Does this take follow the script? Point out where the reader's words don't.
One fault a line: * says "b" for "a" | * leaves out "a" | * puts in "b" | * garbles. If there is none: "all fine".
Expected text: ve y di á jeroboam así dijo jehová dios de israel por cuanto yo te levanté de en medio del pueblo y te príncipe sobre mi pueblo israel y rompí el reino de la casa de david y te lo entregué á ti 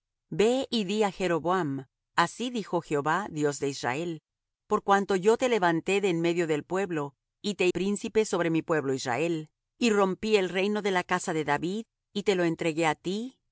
all fine